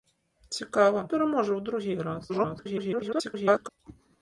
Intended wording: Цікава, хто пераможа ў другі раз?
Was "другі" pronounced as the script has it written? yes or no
yes